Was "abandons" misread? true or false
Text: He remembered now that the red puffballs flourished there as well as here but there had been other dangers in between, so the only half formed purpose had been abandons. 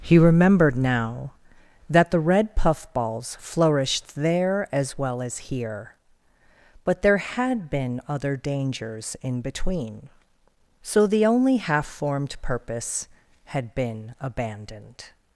true